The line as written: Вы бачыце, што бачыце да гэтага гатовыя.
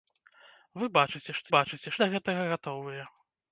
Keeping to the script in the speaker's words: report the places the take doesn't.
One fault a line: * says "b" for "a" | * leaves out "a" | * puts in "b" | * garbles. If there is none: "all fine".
all fine